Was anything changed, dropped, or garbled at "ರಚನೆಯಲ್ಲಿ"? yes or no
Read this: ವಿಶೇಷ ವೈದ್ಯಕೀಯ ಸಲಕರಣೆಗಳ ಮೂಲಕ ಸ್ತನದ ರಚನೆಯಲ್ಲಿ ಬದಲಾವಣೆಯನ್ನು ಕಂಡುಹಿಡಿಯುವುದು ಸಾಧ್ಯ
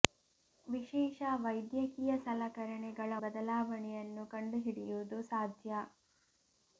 yes